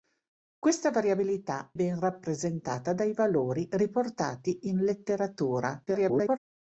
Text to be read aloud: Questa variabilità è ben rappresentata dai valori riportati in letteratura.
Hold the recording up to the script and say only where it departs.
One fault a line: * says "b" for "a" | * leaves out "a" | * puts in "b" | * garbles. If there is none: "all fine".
* leaves out "è"
* garbles